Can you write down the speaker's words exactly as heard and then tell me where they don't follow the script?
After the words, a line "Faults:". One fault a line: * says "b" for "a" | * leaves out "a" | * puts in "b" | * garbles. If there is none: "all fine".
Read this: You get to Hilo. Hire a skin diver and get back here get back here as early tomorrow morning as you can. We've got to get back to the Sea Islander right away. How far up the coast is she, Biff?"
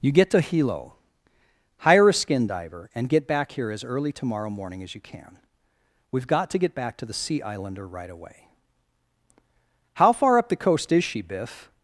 You get to Hilo. Hire a skin diver and get back here as early tomorrow morning as you can. We've got to get back to the Sea Islander right away. How far up the coast is she, Biff?"
Faults:
* leaves out "get back here"